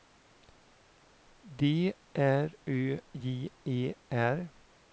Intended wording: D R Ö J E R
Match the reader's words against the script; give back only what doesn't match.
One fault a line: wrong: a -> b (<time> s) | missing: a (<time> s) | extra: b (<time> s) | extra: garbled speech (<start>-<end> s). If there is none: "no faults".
no faults